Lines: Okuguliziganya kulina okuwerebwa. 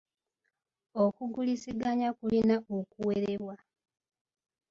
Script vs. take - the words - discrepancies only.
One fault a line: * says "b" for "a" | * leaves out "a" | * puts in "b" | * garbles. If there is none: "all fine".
all fine